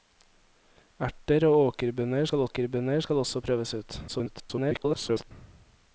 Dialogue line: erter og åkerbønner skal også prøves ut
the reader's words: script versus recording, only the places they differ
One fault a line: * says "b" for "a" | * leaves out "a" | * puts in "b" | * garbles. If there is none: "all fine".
* puts in "åkerbønner skal"
* garbles